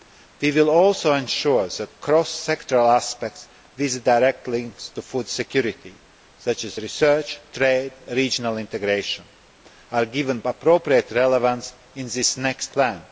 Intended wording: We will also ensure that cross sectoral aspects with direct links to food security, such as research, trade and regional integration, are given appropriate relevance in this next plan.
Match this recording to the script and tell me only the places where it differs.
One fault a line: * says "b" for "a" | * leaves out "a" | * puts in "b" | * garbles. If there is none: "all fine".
all fine